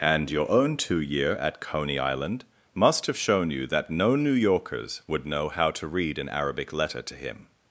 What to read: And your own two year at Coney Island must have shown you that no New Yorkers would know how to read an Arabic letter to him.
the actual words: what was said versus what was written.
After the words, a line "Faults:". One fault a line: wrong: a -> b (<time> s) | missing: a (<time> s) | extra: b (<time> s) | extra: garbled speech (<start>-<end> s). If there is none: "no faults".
And your own two year at Coney Island must have shown you that no New Yorkers would know how to read an Arabic letter to him.
Faults:
no faults